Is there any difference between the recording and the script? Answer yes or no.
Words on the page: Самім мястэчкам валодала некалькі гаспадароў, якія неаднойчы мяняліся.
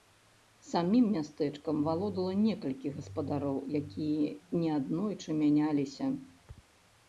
no